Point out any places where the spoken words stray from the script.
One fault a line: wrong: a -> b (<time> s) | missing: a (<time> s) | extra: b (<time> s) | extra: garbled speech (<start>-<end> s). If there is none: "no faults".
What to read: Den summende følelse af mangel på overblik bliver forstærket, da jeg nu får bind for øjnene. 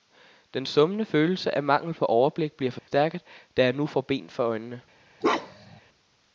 no faults